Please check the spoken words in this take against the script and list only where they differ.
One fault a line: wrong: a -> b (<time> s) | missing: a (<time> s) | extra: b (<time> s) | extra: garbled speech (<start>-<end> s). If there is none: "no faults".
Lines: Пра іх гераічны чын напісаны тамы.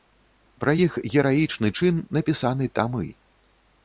no faults